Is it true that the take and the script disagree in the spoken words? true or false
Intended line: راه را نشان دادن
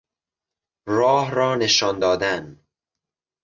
false